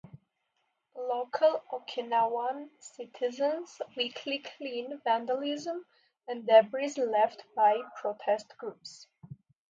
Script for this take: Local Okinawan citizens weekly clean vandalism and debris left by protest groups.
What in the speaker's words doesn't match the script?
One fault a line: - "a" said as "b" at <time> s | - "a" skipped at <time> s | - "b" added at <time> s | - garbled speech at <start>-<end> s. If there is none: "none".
none